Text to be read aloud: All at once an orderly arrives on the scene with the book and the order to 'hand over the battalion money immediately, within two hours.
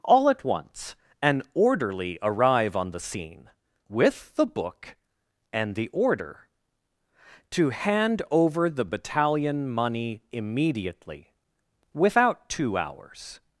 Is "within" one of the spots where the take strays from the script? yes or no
yes